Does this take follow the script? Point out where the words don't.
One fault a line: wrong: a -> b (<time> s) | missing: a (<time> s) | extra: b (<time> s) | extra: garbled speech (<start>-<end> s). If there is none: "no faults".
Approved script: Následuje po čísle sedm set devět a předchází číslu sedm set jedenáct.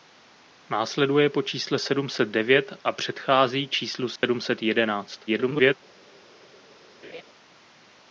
extra: garbled speech (5.3-5.8 s)